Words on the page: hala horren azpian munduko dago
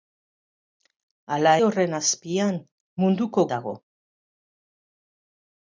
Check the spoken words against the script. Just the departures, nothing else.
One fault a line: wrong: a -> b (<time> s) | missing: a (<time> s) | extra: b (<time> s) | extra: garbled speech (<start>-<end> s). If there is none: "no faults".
no faults